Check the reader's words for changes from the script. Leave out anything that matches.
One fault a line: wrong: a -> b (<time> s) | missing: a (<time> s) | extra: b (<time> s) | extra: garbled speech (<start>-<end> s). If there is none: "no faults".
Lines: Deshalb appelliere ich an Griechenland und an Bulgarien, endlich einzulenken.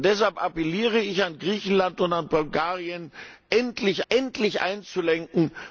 extra: endlich (4.1 s)